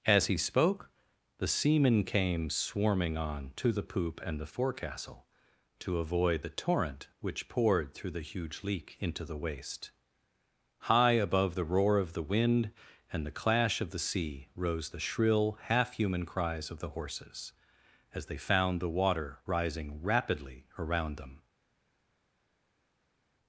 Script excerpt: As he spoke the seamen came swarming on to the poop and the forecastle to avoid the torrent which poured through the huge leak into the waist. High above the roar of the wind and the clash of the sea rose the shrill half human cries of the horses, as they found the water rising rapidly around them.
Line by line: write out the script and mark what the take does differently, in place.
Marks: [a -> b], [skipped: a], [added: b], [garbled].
As he spoke the seamen came swarming on to the poop and the forecastle to avoid the torrent which poured through the huge leak into the waist. High above the roar of the wind and the clash of the sea rose the shrill half human cries of the horses, as they found the water rising rapidly around them.